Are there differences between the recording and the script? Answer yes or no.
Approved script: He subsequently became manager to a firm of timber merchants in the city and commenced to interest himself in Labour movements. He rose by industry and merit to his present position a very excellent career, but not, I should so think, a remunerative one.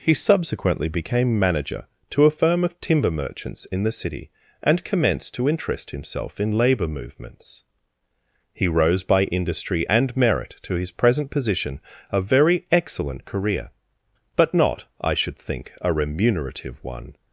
yes